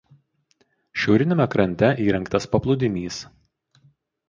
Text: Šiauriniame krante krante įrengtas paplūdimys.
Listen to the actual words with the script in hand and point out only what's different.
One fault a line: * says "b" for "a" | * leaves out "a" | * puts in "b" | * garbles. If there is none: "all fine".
* leaves out "krante"